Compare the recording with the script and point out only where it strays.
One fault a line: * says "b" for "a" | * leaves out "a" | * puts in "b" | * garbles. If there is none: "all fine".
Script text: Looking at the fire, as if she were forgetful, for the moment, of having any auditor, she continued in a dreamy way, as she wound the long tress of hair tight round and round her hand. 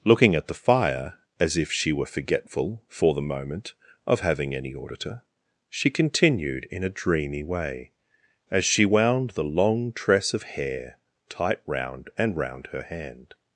all fine